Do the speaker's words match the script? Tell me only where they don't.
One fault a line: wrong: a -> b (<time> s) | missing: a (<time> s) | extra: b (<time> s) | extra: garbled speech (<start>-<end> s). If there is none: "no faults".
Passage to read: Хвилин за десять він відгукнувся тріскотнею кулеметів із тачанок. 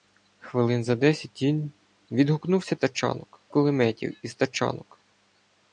wrong: тріскотнею -> тачанок (2.8 s)